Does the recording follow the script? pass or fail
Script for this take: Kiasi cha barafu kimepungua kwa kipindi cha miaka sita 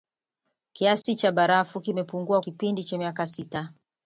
fail